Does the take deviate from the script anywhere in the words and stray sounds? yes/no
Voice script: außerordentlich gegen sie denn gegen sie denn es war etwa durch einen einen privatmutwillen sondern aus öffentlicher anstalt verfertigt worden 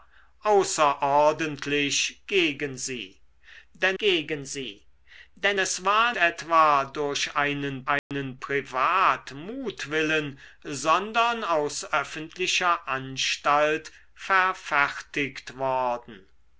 yes